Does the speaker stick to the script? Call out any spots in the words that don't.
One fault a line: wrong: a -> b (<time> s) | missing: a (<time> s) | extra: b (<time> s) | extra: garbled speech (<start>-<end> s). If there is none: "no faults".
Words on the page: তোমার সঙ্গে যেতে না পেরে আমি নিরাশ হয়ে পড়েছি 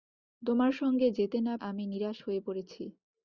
missing: পেরে (1.5 s)